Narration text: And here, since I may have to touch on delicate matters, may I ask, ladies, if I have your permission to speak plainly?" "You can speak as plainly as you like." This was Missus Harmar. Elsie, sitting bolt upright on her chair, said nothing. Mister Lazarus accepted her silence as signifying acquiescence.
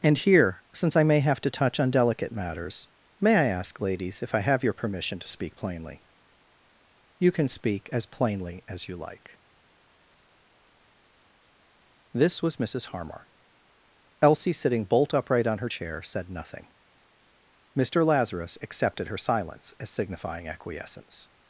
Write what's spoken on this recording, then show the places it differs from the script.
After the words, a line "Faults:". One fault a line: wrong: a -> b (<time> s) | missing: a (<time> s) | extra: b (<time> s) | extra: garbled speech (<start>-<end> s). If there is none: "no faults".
And here, since I may have to touch on delicate matters, may I ask, ladies, if I have your permission to speak plainly?" "You can speak as plainly as you like." This was Missus Harmar. Elsie, sitting bolt upright on her chair, said nothing. Mister Lazarus accepted her silence as signifying acquiescence.
Faults:
no faults